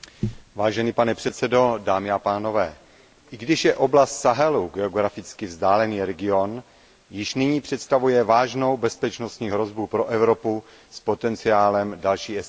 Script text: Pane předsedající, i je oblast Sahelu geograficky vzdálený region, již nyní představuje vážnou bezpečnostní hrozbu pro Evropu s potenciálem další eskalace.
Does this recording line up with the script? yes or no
no